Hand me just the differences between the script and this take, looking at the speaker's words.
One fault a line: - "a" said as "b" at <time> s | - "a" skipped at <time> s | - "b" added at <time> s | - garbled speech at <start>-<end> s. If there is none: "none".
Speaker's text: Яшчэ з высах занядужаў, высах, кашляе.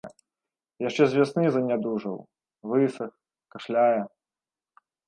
- "высах" said as "вясны" at 1.2 s